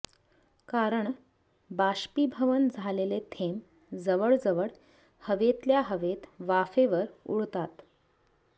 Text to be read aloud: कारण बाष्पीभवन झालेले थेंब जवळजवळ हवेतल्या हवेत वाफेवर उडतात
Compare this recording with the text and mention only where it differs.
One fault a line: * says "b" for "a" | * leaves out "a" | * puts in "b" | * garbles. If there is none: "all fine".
all fine